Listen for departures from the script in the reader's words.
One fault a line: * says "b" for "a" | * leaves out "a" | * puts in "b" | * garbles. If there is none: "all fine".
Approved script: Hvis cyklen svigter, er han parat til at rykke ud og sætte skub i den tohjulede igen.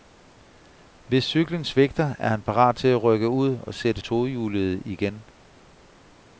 * leaves out "skub i den"